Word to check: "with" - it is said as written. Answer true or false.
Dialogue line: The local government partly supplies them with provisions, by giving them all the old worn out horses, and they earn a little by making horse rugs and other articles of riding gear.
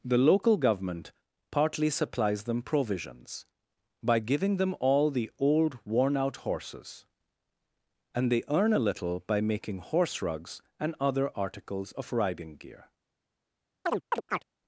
false